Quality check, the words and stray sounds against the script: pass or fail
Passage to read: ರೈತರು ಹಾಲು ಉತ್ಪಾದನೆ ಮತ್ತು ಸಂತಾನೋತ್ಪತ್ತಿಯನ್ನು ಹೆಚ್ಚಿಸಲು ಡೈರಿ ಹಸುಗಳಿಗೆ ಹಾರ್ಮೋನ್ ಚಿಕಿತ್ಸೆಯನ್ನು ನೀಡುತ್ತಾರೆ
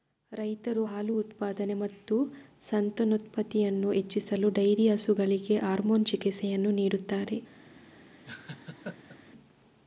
fail